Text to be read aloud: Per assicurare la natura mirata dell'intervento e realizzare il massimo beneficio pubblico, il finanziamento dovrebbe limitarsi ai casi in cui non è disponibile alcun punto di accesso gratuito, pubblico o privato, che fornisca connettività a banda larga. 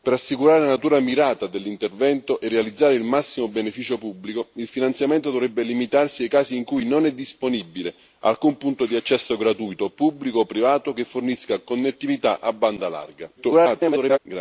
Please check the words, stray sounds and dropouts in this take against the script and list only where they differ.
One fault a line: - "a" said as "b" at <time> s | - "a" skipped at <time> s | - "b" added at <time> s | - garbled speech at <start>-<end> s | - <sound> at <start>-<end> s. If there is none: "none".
- garbled speech at 13.4-14.2 s